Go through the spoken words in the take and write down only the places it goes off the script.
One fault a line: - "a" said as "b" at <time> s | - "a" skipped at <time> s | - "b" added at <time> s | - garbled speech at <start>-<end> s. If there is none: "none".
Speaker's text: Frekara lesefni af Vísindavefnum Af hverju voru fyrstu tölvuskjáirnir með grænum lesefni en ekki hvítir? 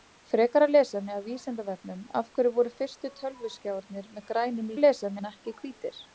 none